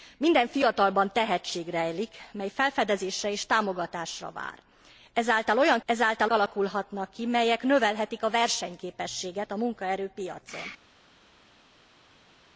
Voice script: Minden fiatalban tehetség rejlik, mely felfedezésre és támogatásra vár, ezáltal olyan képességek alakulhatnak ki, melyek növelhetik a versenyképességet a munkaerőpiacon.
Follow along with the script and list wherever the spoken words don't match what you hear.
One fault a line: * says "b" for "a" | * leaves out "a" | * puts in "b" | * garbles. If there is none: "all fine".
* says "ezáltal" for "képességek"